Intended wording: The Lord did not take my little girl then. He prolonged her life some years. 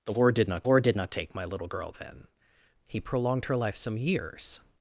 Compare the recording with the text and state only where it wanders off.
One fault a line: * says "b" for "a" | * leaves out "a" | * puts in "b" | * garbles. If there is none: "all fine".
* puts in "Lord did not"